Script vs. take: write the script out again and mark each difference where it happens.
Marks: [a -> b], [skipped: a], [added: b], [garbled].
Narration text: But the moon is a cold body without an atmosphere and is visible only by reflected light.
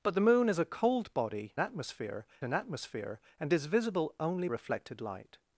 But the moon is a cold body [without -> atmosphere] an atmosphere and is visible only [skipped: by] reflected light.